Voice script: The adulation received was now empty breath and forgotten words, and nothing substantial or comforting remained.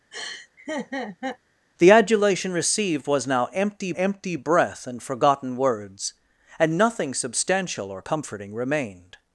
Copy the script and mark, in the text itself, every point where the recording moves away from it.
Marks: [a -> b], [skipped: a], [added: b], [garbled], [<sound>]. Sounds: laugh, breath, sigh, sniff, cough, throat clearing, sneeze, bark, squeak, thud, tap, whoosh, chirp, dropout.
[laugh] The adulation received was now empty [added: empty] breath and forgotten words, and nothing substantial or comforting remained.